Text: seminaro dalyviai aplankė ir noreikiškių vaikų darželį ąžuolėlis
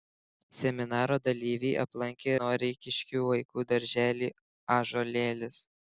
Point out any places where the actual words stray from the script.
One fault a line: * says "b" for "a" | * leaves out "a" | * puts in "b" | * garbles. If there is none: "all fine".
* leaves out "ir"